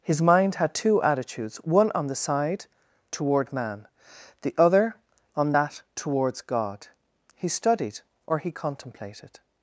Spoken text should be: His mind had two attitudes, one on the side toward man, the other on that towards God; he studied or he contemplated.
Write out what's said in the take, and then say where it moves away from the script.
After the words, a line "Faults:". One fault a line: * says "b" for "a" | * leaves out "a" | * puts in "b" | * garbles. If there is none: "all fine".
His mind had two attitudes, one on the side toward man, the other on that towards God; he studied or he contemplated.
Faults:
all fine